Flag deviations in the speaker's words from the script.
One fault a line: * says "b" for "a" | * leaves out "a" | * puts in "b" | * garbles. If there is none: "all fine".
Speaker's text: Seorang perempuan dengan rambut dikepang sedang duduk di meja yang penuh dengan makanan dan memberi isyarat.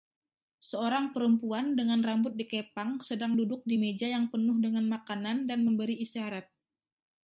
all fine